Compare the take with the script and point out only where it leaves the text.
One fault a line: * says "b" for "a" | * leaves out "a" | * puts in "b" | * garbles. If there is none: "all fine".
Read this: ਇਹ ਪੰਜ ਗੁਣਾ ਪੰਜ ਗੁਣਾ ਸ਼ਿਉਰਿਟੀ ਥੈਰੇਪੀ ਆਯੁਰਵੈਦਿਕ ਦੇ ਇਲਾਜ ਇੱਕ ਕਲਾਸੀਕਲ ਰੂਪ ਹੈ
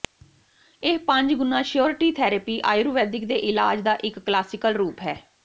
* leaves out "ਪੰਜ ਗੁਣਾ"
* puts in "ਦਾ"